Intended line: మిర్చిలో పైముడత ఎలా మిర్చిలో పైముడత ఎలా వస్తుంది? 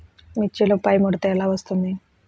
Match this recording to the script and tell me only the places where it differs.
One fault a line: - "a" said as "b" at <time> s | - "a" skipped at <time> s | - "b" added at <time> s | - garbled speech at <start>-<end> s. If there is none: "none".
- "మిర్చిలో పైముడత ఎలా" skipped at 1.5 s